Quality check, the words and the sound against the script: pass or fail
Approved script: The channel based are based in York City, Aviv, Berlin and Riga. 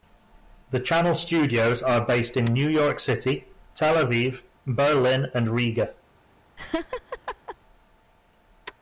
fail